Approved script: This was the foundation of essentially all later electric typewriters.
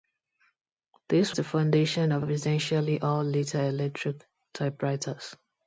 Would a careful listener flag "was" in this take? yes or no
yes